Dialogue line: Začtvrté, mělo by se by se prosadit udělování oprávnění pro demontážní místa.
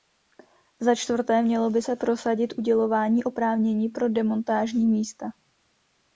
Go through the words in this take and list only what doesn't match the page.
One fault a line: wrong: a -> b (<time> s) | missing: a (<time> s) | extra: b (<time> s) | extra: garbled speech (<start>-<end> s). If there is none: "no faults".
missing: by se (2.0 s)